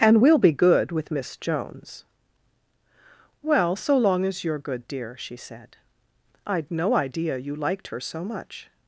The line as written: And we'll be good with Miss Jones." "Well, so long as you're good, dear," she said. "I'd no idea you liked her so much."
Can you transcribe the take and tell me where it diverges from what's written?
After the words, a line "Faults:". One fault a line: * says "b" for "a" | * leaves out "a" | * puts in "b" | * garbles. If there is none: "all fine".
And we'll be good with Miss Jones." "Well, so long as you're good, dear," she said. "I'd no idea you liked her so much."
Faults:
all fine